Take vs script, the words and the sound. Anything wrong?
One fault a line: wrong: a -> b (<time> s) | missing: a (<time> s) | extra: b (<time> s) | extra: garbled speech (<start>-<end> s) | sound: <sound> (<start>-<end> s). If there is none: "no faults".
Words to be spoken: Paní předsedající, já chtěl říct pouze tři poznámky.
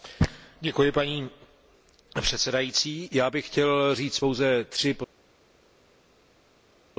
extra: bych (3.3 s)